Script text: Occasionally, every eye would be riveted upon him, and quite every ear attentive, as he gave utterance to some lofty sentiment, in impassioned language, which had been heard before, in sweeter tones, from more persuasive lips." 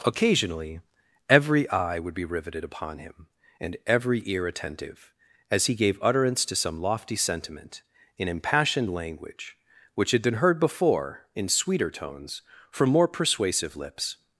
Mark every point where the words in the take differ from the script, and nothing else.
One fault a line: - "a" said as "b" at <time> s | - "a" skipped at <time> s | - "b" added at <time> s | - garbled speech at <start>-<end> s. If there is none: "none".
- "quite" skipped at 3.8 s